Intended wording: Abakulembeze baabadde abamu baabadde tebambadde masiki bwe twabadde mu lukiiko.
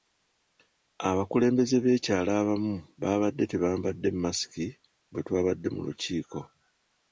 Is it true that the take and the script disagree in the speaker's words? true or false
true